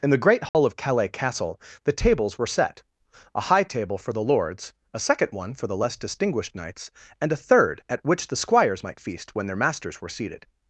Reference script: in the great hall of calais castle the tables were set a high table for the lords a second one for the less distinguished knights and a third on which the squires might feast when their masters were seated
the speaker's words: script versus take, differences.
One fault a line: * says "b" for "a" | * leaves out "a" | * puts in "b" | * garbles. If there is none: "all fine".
* says "at" for "on"